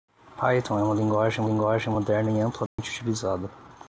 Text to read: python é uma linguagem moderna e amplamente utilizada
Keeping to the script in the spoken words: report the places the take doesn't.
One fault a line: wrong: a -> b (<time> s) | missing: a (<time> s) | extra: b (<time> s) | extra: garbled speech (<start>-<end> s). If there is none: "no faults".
extra: linguagem (1.4 s)